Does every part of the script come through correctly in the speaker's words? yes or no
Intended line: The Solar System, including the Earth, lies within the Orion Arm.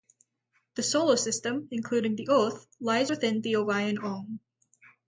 yes